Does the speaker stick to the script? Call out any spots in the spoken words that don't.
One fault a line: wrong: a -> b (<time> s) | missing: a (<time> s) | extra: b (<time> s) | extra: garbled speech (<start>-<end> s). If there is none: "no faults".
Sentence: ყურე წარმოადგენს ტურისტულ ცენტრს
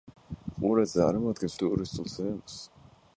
no faults